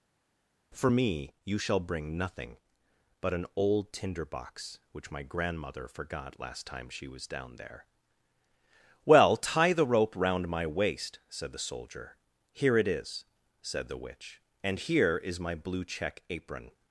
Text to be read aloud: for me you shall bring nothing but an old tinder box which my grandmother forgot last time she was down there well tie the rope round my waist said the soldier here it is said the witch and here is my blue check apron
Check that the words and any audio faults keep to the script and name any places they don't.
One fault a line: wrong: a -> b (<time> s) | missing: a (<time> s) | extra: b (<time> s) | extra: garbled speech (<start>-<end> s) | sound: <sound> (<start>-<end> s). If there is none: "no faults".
no faults